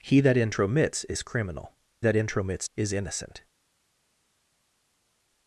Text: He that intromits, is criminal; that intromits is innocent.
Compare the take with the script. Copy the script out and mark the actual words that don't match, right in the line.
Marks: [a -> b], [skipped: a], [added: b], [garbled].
He that intromits, is criminal; that intromits is innocent.